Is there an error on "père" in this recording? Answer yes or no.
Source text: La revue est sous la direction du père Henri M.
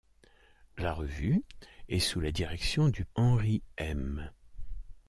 yes